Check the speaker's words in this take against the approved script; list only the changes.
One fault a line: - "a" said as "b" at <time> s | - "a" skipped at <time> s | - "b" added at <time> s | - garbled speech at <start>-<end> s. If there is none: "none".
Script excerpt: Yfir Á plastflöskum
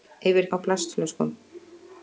none